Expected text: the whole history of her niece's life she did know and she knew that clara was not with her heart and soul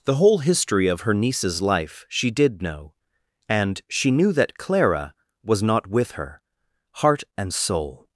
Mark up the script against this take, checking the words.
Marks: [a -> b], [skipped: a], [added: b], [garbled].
the whole history of her niece's life she did know and she knew that clara was not with her heart and soul